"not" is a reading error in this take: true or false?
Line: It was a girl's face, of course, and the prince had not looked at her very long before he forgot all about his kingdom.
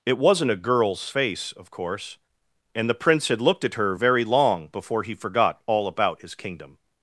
true